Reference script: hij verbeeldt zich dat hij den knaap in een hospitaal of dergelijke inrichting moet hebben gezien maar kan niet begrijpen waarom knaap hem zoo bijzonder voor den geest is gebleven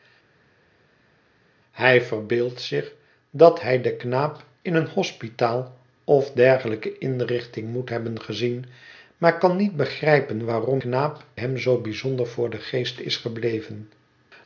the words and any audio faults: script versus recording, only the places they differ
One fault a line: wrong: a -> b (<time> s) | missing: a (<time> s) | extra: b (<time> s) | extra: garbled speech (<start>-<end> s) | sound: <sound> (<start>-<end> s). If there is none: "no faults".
no faults